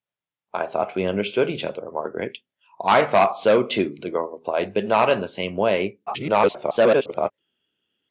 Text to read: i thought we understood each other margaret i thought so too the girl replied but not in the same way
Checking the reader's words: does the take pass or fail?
fail